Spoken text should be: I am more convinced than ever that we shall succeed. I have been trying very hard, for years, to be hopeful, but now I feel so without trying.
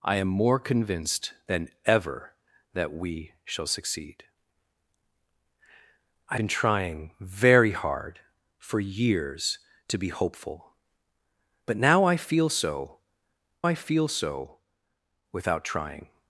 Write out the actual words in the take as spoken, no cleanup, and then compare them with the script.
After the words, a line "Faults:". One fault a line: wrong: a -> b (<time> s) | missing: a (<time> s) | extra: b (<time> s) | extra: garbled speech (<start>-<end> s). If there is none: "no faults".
I am more convinced than ever that we shall succeed. I been trying very hard, for years, to be hopeful, but now I feel so I feel so without trying.
Faults:
missing: have (6.4 s)
extra: I feel so (13.6 s)